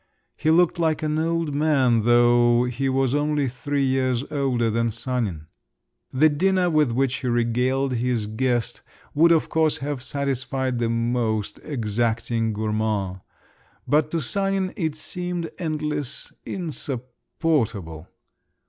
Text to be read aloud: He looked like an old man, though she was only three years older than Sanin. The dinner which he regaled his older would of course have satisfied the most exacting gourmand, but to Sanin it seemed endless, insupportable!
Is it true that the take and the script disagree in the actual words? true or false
true